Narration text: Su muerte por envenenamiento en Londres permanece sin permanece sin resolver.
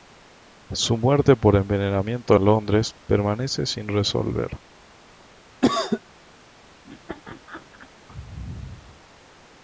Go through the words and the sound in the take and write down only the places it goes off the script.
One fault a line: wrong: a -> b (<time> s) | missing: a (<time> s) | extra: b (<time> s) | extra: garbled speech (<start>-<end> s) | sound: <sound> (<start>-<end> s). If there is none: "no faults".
missing: permanece sin (3.9 s)
sound: cough (5.6-6.0 s)
sound: laugh (6.8-7.9 s)